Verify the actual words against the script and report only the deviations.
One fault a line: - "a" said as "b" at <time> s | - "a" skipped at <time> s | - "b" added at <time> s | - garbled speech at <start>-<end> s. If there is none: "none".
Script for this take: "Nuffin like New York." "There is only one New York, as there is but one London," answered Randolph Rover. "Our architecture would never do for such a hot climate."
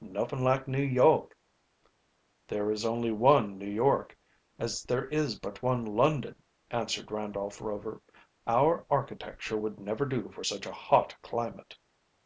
none